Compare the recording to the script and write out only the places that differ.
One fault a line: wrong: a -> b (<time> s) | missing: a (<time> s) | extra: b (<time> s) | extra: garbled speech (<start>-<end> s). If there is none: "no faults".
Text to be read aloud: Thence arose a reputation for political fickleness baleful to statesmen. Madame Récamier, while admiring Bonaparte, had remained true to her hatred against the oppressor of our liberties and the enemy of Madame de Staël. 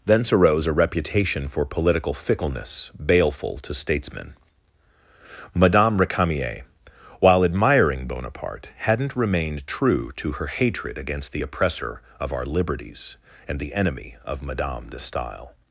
wrong: had -> hadn't (8.8 s)